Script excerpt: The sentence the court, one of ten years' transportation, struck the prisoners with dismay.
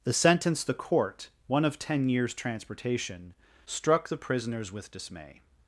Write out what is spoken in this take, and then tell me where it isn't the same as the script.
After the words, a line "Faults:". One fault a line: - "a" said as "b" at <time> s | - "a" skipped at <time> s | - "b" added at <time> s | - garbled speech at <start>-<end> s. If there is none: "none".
The sentence the court, one of ten years' transportation, struck the prisoners with dismay.
Faults:
none